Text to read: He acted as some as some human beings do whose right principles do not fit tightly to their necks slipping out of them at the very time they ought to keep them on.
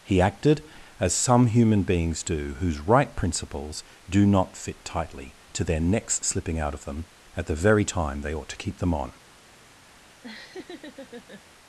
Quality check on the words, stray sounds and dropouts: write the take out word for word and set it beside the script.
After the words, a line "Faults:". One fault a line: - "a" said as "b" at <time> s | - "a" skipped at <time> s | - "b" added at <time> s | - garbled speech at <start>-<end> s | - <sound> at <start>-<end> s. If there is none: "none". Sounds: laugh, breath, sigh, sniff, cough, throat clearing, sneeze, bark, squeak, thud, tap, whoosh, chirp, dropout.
He acted as some human beings do whose right principles do not fit tightly to their necks slipping out of them at the very time they ought to keep them on.
Faults:
- "as some" skipped at 1.5 s
- laugh at 10.2-11.4 s